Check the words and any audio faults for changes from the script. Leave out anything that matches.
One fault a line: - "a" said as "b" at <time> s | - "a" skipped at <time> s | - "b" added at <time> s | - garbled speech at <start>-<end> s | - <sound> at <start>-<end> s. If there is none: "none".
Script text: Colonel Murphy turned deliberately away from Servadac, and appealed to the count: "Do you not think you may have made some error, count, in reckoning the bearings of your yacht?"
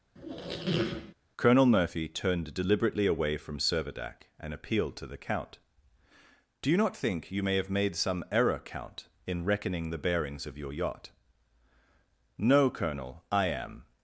- squeak at 0.1-1.1 s
- "No colonel I am" added at 12.4 s